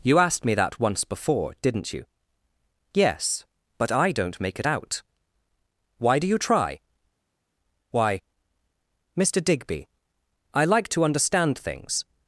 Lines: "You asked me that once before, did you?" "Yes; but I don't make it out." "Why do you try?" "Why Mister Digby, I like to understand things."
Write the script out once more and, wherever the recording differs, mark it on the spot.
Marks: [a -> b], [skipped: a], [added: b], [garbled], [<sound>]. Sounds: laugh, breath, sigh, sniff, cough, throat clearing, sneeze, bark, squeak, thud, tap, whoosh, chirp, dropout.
"You asked me that once before, [did -> didn't] you?" "Yes; but I don't make it out." "Why do you try?" "Why Mister Digby, I like to understand things."